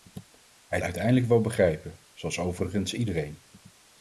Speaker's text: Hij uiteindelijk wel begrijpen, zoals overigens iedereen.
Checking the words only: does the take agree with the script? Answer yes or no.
yes